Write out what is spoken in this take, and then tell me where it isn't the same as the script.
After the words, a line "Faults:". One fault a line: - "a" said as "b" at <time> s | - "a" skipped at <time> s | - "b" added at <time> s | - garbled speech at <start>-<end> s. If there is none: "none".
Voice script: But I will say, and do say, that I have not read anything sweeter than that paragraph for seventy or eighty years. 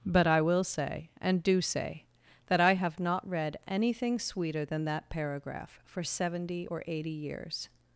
But I will say, and do say, that I have not read anything sweeter than that paragraph for seventy or eighty years.
Faults:
none